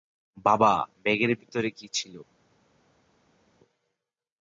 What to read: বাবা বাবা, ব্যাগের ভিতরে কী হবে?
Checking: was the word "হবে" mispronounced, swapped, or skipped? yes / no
yes